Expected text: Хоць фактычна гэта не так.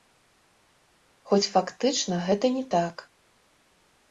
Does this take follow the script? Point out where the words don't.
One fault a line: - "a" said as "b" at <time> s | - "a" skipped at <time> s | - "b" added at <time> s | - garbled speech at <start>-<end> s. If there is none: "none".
none